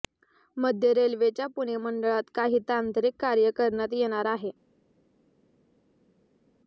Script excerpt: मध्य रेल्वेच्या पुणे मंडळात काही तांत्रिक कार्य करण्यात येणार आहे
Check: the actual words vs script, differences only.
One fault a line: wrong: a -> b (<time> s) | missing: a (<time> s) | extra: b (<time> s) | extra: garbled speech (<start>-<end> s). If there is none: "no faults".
no faults